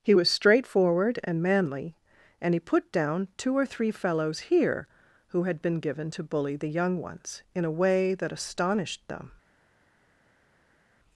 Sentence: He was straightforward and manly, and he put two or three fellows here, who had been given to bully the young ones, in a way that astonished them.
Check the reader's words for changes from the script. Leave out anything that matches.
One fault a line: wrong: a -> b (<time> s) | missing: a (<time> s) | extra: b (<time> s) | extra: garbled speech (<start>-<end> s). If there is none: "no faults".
extra: down (2.9 s)